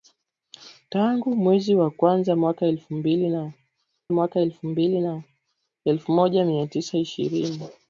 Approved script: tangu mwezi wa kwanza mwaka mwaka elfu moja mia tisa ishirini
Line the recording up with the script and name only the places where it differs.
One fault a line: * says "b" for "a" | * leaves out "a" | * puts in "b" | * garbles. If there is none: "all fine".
all fine